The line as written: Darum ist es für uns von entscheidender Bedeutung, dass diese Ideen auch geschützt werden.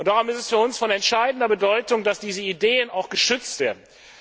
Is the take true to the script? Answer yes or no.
yes